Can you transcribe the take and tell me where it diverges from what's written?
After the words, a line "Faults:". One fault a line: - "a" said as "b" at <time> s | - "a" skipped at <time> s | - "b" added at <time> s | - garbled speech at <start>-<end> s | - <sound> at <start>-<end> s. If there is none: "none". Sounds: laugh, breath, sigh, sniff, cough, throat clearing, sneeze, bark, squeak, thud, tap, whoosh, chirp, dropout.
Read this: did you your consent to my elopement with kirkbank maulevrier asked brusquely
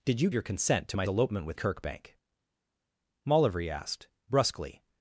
did you your consent to my elopement with kirkbank maulevrier asked brusquely
Faults:
none